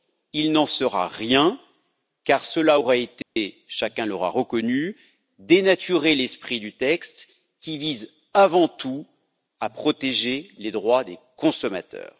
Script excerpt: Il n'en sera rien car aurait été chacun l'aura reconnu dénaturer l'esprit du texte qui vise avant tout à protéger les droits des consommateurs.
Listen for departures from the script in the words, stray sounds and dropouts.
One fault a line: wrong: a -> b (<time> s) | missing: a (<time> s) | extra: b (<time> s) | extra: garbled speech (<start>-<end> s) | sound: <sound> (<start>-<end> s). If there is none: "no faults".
extra: cela (2.5 s)
sound: dropout (3.2-3.4 s)